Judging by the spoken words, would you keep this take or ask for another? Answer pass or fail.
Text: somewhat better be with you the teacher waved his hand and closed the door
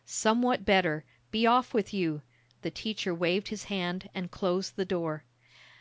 fail